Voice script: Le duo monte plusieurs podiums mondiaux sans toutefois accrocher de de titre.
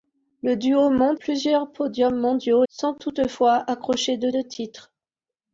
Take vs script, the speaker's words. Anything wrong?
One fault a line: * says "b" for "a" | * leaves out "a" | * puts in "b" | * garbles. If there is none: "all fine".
all fine